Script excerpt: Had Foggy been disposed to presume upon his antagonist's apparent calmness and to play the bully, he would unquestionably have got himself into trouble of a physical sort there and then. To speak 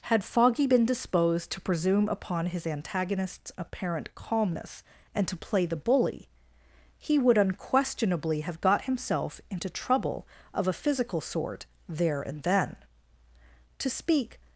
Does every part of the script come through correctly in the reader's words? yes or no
yes